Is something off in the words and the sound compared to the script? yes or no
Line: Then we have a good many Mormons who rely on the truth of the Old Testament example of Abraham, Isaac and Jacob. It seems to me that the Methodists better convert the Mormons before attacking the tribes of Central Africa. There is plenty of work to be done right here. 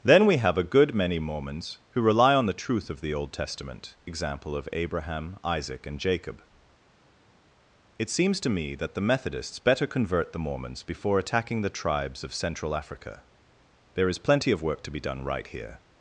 no